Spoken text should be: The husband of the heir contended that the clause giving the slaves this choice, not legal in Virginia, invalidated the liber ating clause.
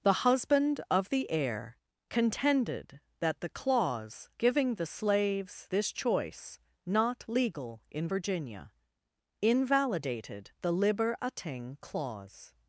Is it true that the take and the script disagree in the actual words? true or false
false